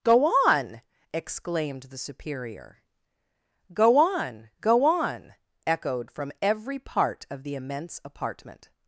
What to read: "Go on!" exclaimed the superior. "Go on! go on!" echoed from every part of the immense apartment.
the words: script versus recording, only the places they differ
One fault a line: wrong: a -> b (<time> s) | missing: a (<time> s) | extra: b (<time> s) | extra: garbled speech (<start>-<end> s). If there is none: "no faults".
no faults